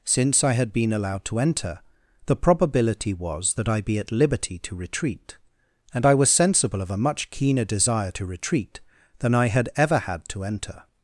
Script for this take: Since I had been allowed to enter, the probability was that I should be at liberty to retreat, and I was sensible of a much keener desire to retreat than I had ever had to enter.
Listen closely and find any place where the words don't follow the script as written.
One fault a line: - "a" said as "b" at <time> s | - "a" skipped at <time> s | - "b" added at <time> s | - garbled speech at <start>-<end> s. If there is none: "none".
- "should" skipped at 3.8 s